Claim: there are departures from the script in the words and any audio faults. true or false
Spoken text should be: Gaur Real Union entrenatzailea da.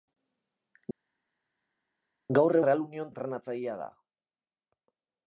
false